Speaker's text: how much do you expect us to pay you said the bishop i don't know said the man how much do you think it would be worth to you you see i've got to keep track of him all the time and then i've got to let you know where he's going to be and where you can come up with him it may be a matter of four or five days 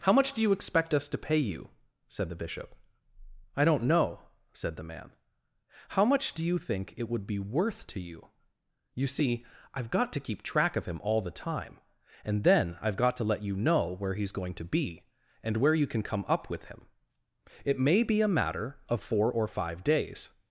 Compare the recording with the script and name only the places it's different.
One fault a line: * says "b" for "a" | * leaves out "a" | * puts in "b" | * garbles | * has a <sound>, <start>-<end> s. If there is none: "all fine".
all fine